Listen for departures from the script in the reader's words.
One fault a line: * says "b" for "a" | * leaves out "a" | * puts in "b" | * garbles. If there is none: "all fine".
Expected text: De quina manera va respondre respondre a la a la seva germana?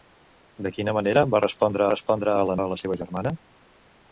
all fine